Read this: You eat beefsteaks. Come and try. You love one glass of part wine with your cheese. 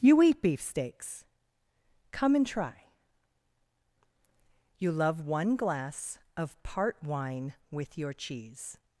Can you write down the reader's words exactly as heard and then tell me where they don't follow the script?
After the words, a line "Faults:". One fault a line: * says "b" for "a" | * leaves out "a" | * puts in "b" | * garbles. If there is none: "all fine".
You eat beefsteaks. Come and try. You love one glass of part wine with your cheese.
Faults:
all fine